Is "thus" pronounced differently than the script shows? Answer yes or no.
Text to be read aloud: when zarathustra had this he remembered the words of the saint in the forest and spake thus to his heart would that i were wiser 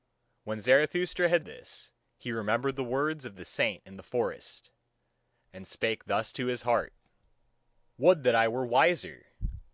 no